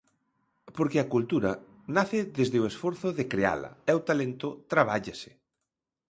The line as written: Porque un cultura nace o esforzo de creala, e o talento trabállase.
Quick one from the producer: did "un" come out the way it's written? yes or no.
no